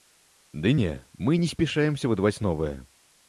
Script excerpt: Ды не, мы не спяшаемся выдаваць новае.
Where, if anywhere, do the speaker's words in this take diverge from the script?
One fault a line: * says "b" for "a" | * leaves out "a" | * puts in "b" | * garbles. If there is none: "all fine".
all fine